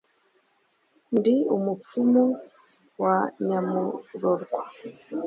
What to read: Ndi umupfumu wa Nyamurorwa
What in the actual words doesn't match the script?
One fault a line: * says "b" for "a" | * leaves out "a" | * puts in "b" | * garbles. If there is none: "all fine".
all fine